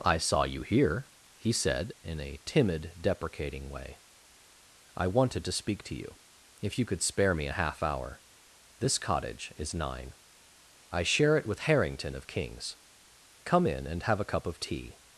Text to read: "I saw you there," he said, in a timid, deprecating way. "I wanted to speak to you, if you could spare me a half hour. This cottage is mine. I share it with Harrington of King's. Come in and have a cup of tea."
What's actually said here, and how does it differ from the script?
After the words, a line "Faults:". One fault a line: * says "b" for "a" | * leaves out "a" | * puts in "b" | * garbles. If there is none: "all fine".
"I saw you here," he said, in a timid, deprecating way. "I wanted to speak to you, if you could spare me a half hour. This cottage is nine. I share it with Harrington of King's. Come in and have a cup of tea."
Faults:
* says "here" for "there"
* says "nine" for "mine"